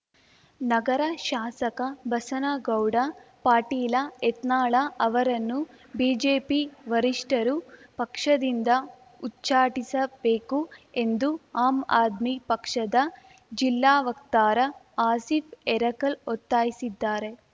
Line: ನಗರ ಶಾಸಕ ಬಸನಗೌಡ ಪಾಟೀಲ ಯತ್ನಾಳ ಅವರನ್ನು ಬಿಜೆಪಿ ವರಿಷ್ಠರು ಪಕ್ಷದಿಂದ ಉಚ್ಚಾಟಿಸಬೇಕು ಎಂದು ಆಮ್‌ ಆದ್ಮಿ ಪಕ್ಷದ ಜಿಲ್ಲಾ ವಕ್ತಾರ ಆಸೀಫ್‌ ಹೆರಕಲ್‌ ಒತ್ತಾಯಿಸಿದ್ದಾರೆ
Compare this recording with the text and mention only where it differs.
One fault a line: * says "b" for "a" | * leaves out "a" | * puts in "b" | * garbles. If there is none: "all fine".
all fine